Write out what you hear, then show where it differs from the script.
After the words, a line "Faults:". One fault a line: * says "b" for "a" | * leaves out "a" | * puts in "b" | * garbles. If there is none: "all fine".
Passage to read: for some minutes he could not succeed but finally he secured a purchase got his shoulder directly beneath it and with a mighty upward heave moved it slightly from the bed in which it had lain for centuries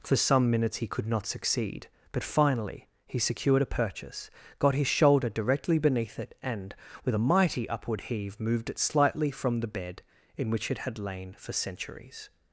for some minutes he could not succeed but finally he secured a purchase got his shoulder directly beneath it and with a mighty upward heave moved it slightly from the bed in which it had lain for centuries
Faults:
all fine